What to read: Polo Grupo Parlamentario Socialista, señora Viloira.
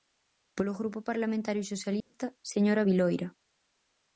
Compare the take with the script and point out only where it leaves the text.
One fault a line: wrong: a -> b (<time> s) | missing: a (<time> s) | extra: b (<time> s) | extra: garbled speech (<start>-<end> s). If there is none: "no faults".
no faults